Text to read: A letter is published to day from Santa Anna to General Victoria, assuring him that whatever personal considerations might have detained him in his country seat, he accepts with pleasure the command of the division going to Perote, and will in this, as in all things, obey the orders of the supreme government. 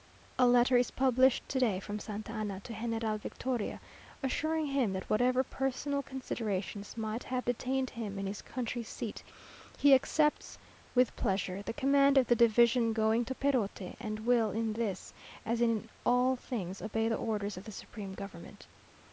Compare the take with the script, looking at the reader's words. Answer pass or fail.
pass